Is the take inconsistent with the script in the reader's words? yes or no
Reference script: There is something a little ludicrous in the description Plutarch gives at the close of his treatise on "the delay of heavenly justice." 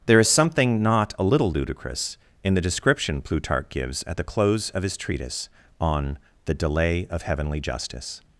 yes